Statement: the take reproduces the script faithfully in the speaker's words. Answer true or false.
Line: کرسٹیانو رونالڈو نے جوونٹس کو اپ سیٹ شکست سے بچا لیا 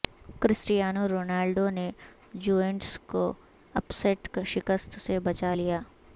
true